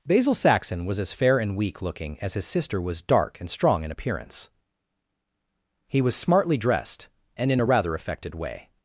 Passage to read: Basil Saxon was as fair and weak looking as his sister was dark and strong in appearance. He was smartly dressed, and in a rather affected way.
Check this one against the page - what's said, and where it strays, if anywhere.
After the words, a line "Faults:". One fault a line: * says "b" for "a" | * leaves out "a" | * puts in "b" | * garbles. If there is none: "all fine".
Basil Saxon was as fair and weak looking as his sister was dark and strong in appearance. He was smartly dressed, and in a rather affected way.
Faults:
all fine